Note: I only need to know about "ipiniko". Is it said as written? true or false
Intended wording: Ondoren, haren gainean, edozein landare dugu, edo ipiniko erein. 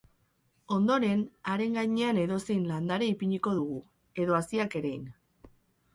false